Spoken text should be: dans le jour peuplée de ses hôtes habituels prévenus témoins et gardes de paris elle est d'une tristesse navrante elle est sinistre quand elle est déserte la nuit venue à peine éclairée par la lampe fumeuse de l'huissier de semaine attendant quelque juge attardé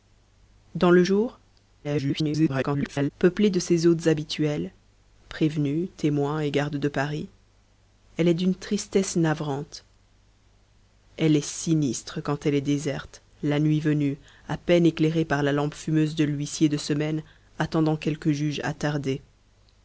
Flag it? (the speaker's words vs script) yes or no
yes